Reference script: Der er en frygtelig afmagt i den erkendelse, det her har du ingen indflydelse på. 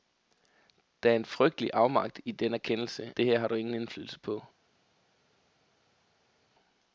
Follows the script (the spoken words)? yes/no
yes